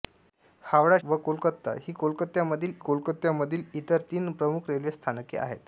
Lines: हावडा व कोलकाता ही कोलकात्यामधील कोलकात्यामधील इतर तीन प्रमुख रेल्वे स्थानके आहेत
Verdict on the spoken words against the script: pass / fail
pass